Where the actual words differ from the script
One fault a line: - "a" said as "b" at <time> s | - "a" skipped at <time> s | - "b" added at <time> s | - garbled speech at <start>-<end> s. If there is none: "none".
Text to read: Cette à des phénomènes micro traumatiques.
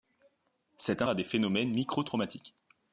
none